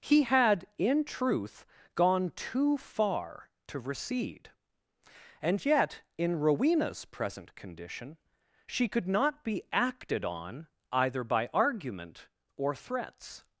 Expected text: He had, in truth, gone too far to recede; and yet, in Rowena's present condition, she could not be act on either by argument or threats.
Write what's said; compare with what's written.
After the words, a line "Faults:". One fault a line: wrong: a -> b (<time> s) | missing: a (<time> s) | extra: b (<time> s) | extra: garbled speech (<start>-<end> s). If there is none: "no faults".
He had, in truth, gone too far to recede; and yet, in Rowena's present condition, she could not be acted on either by argument or threats.
Faults:
wrong: act -> acted (9.7 s)